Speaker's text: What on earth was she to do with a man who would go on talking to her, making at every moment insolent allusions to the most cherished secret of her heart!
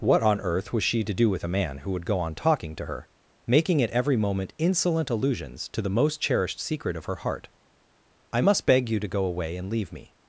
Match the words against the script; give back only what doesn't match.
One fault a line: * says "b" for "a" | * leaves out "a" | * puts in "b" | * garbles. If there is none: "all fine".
* puts in "I must beg you to go away and leave me"